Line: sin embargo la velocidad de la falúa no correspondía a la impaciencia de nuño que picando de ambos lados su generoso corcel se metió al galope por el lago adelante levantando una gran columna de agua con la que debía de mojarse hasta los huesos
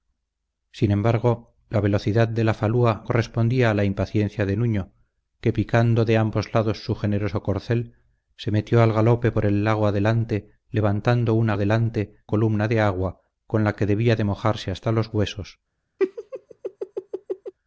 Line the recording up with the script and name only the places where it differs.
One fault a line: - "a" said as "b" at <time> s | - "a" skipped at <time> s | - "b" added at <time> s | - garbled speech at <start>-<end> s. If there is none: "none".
- "no" skipped at 3.0 s
- "gran" said as "adelante" at 11.5 s